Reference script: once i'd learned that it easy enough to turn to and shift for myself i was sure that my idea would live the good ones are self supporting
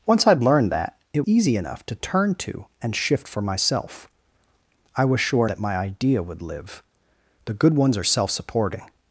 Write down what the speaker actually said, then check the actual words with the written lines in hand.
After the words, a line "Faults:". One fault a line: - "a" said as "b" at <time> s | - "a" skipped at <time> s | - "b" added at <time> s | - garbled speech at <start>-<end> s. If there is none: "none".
once i'd learned that it easy enough to turn to and shift for myself i was sure that my idea would live the good ones are self supporting
Faults:
none